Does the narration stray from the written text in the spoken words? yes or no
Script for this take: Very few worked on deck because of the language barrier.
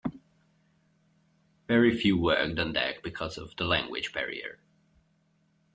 no